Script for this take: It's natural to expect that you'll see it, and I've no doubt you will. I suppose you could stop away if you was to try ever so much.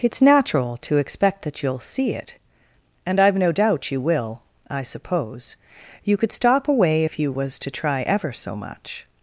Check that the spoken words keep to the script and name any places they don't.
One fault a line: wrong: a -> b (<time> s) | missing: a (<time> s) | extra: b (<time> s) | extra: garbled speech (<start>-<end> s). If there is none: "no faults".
no faults